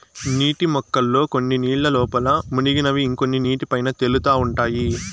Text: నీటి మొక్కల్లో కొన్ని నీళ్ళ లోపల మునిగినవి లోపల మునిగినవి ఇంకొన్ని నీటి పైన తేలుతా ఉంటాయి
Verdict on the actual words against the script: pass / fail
fail